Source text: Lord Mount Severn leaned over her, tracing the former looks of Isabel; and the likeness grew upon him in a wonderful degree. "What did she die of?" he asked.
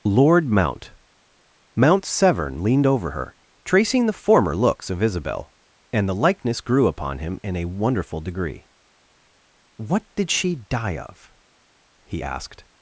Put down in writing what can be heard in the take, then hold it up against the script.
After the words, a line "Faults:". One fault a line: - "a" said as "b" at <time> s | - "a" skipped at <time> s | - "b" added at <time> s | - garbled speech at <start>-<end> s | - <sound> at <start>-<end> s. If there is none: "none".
Lord Mount Mount Severn leaned over her, tracing the former looks of Isabel; and the likeness grew upon him in a wonderful degree. "What did she die of?" he asked.
Faults:
- "Mount" added at 1.8 s